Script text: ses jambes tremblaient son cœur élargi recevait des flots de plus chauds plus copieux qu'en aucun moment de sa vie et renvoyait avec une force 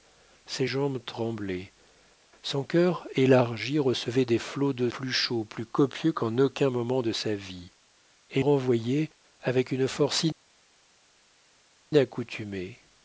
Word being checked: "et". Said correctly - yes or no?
yes